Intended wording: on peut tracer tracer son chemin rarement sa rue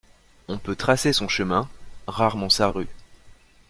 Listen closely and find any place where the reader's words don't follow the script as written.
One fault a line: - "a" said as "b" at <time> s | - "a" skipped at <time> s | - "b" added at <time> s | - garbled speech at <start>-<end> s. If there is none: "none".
- "tracer" skipped at 1.1 s